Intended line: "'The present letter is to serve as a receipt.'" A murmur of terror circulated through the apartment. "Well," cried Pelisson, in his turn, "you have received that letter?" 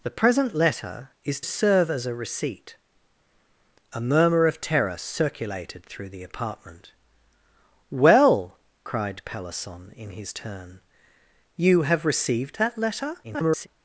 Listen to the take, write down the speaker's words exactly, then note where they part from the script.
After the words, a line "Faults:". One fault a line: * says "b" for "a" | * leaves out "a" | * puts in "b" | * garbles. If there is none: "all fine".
"'The present letter is serve as a receipt.'" A murmur of terror circulated through the apartment. "Well," cried Pelisson, in his turn, "you have received that letter?" [garbled]
Faults:
* leaves out "to"
* garbles